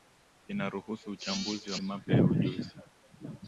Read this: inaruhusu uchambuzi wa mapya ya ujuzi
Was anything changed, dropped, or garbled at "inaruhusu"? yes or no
no